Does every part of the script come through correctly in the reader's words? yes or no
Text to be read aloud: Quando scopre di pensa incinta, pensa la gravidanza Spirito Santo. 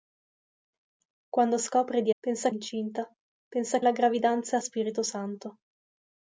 yes